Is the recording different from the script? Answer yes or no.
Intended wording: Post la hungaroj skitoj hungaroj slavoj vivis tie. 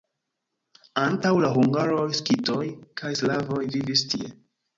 yes